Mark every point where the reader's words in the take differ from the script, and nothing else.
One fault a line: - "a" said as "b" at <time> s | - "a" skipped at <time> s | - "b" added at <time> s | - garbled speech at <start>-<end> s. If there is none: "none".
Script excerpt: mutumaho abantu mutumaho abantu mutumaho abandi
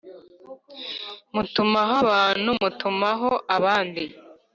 - "abantu mutumaho" skipped at 3.3 s